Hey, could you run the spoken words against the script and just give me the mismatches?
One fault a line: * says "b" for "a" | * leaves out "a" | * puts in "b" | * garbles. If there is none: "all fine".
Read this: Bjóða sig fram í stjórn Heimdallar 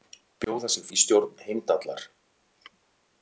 * leaves out "fram"